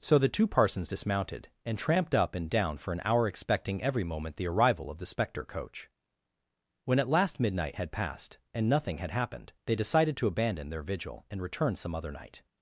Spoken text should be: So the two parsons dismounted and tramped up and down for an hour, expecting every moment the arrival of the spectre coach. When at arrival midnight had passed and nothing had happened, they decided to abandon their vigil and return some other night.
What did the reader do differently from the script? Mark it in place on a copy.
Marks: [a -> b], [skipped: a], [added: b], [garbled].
So the two parsons dismounted and tramped up and down for an hour, expecting every moment the arrival of the spectre coach. When at [arrival -> last] midnight had passed and nothing had happened, they decided to abandon their vigil and return some other night.